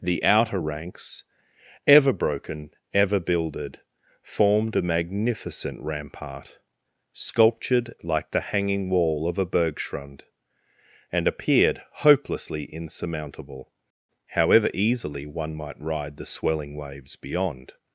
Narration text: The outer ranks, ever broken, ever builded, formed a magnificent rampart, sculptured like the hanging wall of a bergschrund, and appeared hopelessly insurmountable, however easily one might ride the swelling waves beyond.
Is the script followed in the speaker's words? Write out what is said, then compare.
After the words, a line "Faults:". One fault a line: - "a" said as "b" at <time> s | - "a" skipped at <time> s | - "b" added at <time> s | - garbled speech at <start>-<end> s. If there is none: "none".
The outer ranks, ever broken, ever builded, formed a magnificent rampart, sculptured like the hanging wall of a bergschrund, and appeared hopelessly insurmountable, however easily one might ride the swelling waves beyond.
Faults:
none